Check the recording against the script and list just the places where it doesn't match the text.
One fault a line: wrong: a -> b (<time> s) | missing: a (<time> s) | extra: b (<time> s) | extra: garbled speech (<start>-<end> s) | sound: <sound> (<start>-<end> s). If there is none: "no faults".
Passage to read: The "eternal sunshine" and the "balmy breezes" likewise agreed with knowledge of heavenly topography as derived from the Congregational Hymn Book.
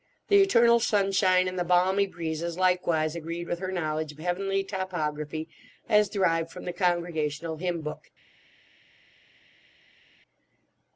extra: her (3.6 s)